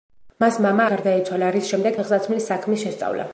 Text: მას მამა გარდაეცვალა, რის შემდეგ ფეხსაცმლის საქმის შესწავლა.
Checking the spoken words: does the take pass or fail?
pass